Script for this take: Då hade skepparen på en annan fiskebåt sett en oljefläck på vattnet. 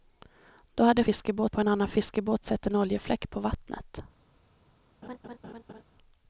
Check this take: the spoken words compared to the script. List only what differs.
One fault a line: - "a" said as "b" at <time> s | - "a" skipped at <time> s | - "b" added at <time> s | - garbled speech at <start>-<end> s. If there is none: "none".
- "skepparen" said as "fiskebåt" at 1.0 s